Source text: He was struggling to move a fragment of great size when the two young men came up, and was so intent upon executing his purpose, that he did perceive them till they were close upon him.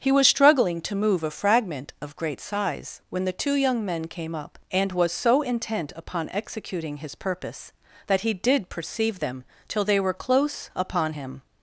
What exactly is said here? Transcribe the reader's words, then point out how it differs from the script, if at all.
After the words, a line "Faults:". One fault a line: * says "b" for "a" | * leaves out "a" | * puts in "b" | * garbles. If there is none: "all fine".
He was struggling to move a fragment of great size when the two young men came up, and was so intent upon executing his purpose, that he did perceive them till they were close upon him.
Faults:
all fine